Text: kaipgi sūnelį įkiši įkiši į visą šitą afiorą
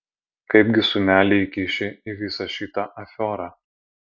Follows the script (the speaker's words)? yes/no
no